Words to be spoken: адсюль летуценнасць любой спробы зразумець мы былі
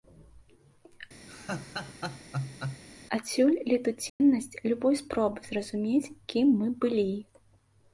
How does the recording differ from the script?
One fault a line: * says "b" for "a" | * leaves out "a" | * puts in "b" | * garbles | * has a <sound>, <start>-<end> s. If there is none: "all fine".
* has a laugh, 1.3-2.8 s
* has a dropout, 4.1-4.2 s
* puts in "кім"